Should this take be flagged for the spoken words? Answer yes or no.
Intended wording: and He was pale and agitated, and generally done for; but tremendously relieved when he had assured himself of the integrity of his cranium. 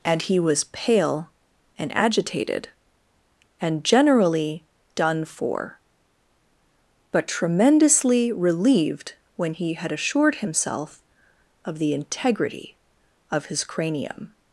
no